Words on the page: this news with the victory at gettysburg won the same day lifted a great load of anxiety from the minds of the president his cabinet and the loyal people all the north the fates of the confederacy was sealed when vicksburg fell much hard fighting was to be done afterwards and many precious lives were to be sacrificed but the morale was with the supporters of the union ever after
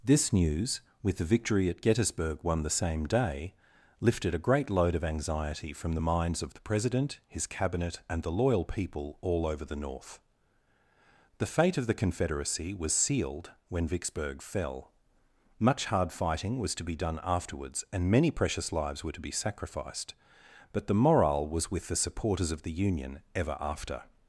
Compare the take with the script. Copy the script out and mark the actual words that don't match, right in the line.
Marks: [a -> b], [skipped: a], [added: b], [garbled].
this news with the victory at gettysburg won the same day lifted a great load of anxiety from the minds of the president his cabinet and the loyal people all [added: over] the north the [fates -> fate] of the confederacy was sealed when vicksburg fell much hard fighting was to be done afterwards and many precious lives were to be sacrificed but the morale was with the supporters of the union ever after